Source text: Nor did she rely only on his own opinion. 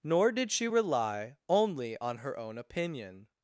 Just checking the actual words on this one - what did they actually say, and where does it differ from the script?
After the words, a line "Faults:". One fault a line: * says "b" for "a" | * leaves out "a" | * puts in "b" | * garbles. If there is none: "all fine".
Nor did she rely only on her own opinion.
Faults:
* says "her" for "his"